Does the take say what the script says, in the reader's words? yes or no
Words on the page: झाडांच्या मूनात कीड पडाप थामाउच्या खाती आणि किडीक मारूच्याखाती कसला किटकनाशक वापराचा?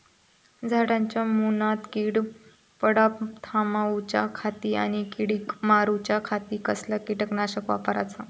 yes